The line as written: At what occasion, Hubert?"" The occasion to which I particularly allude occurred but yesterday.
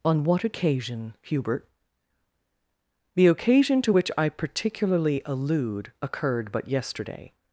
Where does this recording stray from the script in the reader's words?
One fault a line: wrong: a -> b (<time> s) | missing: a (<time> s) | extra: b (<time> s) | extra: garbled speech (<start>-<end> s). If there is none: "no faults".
wrong: At -> On (0.1 s)